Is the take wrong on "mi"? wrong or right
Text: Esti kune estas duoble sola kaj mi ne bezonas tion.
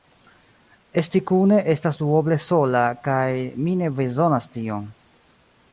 right